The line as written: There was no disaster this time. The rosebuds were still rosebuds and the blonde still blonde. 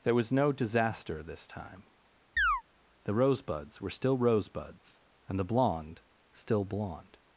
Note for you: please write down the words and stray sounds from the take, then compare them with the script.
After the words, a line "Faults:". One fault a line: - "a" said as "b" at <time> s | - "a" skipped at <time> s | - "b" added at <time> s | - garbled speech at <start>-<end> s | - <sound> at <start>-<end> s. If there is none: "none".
There was no disaster this time. The rosebuds were still rosebuds and the blonde still blonde.
Faults:
- chirp at 2.4-2.6 s